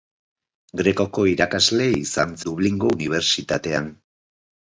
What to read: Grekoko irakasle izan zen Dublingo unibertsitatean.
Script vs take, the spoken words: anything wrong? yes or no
yes